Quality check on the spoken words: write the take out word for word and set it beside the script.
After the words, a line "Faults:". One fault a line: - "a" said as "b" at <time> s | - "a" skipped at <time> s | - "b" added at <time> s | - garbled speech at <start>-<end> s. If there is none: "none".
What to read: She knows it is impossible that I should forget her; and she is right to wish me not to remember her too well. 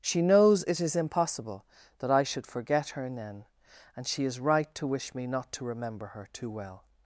She knows it is impossible that I should forget her; then and she is right to wish me not to remember her too well.
Faults:
- "then" added at 3.1 s